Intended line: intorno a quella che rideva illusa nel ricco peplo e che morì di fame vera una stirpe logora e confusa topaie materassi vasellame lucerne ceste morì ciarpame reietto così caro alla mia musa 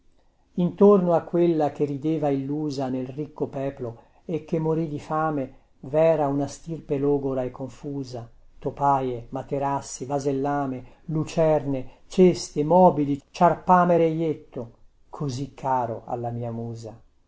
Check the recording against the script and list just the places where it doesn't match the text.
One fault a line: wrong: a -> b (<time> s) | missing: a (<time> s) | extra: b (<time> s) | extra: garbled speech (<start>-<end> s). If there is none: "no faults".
wrong: morì -> mobili (12.6 s)